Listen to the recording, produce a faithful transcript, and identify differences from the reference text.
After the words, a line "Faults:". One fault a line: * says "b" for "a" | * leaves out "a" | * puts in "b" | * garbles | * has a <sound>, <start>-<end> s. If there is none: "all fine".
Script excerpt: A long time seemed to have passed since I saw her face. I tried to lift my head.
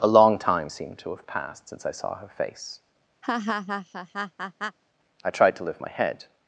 A long time seemed to have passed since I saw her face. I tried to lift my head.
Faults:
* has a laugh, 3.2-4.8 s